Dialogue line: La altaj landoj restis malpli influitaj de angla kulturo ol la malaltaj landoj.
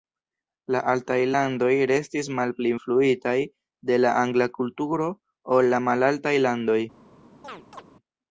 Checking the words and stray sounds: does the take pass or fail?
fail